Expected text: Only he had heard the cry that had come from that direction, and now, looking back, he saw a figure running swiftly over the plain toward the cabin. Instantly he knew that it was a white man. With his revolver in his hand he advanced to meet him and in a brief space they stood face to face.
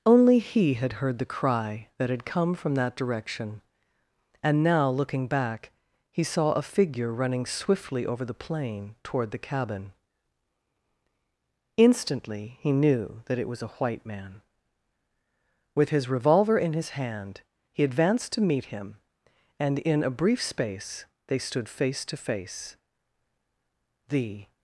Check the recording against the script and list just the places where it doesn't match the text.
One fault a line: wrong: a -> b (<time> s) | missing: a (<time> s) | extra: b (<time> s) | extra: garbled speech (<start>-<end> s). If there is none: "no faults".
extra: The (24.1 s)